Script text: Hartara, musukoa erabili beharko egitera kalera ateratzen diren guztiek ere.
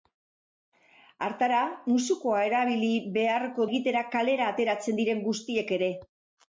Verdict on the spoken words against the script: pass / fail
pass